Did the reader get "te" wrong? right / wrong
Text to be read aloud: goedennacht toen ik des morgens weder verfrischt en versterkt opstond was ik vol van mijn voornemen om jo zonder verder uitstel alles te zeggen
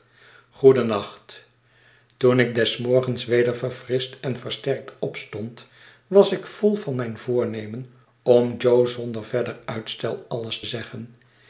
wrong